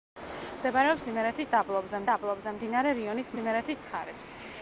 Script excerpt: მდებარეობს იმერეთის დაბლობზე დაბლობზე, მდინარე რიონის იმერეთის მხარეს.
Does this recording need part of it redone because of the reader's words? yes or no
no